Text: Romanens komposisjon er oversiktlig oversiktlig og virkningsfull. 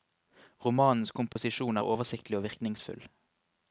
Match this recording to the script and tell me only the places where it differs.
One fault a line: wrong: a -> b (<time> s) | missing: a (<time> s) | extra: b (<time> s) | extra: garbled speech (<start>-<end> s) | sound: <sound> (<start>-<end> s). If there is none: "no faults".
sound: dropout (1.3-1.4 s)
missing: oversiktlig (2.4 s)